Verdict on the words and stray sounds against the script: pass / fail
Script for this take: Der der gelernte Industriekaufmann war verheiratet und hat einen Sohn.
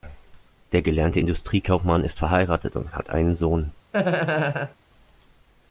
fail